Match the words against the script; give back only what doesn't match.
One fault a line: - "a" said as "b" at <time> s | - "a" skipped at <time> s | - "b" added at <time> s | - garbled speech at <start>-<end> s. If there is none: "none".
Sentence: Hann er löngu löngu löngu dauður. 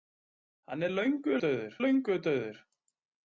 - "löngu" said as "dauður" at 1.5 s